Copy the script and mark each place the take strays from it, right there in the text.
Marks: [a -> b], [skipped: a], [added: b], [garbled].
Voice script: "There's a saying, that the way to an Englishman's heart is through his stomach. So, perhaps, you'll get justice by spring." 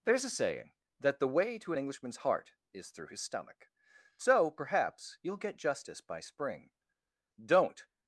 "There's a saying, that the way to an Englishman's heart is through his stomach. So, perhaps, you'll get justice by spring." [added: Don't]